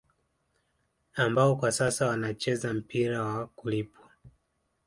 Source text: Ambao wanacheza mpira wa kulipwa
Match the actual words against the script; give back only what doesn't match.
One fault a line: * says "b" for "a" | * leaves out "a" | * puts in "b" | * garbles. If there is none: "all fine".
* puts in "kwa sasa"